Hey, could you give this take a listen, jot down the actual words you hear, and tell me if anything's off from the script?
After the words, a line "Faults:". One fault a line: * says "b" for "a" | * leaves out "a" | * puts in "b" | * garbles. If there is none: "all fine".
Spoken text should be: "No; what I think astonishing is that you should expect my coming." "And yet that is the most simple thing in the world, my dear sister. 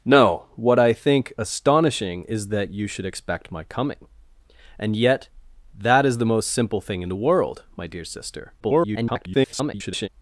"No; what I think astonishing is that you should expect my coming." "And yet that is the most simple thing in the world, my dear sister. [garbled]
Faults:
* garbles